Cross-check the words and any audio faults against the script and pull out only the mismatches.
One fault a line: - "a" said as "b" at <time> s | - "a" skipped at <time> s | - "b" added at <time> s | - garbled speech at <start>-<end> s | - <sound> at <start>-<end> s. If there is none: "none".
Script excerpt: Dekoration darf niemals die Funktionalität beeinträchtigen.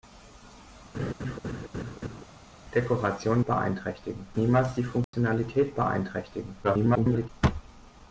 - laugh at 0.9-2.2 s
- "darf" said as "beeinträchtigen" at 3.4 s
- dropout at 5.0-5.1 s
- garbled speech at 6.6-7.3 s